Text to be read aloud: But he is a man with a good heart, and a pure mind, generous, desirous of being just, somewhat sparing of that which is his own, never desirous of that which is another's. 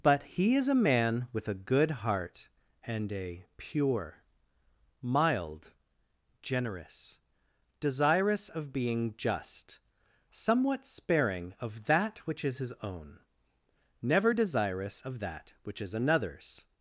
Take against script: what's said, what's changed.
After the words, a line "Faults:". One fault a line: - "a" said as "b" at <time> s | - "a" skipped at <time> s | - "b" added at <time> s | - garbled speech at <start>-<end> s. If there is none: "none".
But he is a man with a good heart, and a pure mild, generous, desirous of being just, somewhat sparing of that which is his own, never desirous of that which is another's.
Faults:
- "mind" said as "mild" at 5.0 s